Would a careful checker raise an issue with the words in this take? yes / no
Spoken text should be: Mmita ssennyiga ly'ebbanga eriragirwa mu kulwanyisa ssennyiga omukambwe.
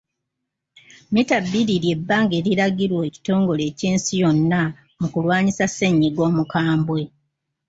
yes